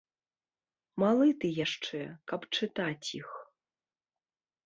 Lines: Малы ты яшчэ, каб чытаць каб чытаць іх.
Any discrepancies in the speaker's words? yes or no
yes